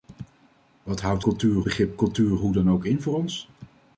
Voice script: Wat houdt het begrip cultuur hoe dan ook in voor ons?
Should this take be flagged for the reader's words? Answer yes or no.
yes